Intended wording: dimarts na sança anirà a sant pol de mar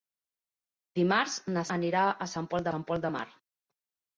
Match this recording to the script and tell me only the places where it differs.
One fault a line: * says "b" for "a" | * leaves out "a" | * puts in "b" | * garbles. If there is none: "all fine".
* leaves out "sança"
* puts in "sant pol"